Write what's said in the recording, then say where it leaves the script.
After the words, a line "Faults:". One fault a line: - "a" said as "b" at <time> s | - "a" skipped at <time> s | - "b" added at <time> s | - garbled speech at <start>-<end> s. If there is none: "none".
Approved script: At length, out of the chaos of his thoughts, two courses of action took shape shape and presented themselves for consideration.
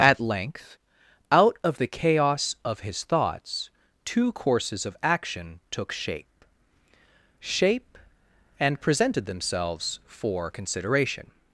At length, out of the chaos of his thoughts, two courses of action took shape shape and presented themselves for consideration.
Faults:
none